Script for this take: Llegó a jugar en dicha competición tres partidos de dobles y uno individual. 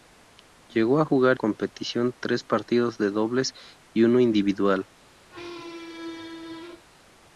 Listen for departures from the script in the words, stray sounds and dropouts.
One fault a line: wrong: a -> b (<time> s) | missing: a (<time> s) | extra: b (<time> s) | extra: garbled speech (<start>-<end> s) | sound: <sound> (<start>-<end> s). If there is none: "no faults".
missing: en dicha (1.4 s)
sound: squeak (5.3-6.8 s)